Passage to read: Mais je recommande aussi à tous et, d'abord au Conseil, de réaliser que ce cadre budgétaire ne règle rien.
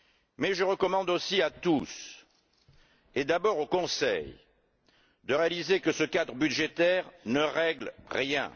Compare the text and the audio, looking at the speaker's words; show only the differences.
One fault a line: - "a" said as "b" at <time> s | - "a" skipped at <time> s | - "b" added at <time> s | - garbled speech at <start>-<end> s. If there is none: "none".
none